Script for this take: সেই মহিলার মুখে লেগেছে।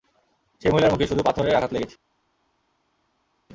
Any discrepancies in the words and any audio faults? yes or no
yes